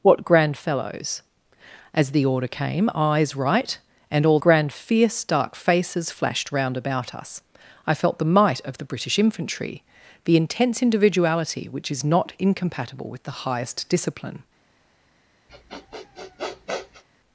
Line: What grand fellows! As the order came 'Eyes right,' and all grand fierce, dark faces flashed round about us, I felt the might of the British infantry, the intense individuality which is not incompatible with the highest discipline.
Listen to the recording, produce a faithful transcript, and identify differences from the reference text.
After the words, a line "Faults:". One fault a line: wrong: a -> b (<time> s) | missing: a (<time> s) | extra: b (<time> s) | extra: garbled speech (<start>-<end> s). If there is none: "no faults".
What grand fellows! As the order came 'Eyes right,' and all grand fierce, dark faces flashed round about us, I felt the might of the British infantry, the intense individuality which is not incompatible with the highest discipline.
Faults:
no faults